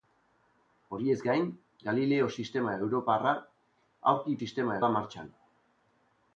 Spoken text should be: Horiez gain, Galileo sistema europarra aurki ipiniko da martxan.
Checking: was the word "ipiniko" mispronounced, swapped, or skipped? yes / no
yes